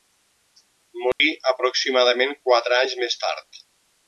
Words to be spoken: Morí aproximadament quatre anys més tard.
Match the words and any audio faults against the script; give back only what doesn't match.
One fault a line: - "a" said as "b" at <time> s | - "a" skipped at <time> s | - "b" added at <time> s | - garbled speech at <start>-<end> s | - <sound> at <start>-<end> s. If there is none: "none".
- dropout at 1.1-1.2 s